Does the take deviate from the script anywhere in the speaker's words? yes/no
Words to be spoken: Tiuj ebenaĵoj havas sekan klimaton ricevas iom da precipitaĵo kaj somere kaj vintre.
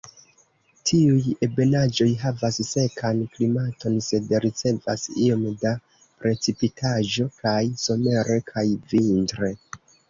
yes